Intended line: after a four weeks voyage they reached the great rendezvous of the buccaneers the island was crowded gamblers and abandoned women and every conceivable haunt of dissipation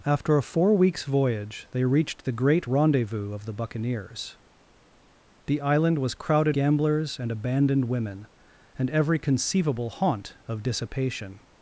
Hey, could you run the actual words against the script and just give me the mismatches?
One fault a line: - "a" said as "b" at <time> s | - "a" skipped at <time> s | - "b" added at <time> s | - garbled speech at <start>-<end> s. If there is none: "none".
none